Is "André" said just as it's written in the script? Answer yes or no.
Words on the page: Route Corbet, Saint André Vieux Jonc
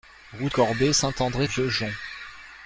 yes